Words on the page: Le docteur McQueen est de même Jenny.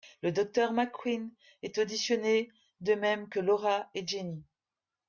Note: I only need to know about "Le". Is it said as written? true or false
true